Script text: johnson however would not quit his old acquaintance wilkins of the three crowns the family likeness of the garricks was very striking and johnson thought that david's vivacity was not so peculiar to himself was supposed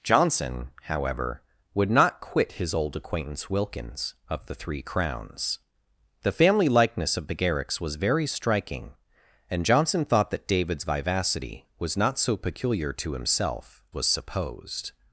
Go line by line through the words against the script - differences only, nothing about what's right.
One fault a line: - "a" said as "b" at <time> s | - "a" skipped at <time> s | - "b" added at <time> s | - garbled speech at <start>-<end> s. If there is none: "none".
none